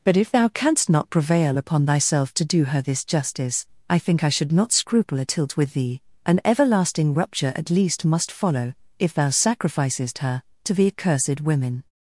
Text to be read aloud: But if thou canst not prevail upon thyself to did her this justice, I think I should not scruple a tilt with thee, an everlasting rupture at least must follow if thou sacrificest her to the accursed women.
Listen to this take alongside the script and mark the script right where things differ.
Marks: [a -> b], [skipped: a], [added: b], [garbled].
But if thou canst not prevail upon thyself to [did -> do] her this justice, I think I should not scruple a tilt with thee, an everlasting rupture at least must follow if thou sacrificest her to the accursed women.